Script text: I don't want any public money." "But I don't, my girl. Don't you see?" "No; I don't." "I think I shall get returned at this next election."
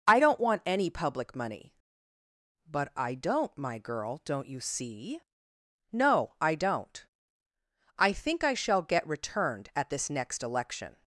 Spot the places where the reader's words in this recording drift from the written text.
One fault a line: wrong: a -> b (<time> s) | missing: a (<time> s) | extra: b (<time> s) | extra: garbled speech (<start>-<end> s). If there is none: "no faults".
no faults